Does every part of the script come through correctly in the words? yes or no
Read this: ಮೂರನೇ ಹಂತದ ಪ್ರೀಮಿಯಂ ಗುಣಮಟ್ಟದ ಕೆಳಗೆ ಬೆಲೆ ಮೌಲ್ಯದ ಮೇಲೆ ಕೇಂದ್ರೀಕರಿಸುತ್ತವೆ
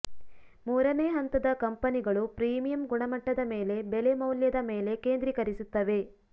no